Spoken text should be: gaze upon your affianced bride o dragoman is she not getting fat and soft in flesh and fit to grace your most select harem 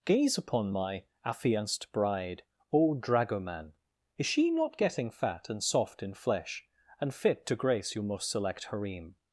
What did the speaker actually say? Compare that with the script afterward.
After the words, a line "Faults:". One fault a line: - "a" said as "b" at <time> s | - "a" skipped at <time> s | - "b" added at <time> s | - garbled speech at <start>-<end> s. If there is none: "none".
gaze upon my affianced bride o dragoman is she not getting fat and soft in flesh and fit to grace your most select harem
Faults:
- "your" said as "my" at 0.7 s